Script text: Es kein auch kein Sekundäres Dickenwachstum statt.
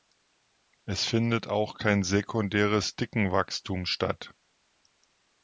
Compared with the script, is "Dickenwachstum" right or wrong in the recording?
right